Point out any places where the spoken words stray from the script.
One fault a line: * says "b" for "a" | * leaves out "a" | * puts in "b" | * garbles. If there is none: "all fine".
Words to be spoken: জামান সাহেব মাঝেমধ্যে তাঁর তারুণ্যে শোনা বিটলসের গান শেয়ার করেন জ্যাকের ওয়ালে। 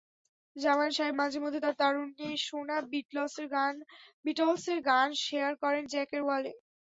all fine